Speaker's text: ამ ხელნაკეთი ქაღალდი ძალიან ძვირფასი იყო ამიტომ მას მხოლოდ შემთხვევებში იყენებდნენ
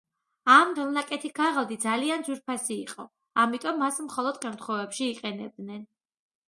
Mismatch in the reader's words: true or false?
false